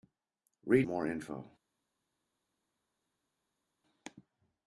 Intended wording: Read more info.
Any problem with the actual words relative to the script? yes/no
no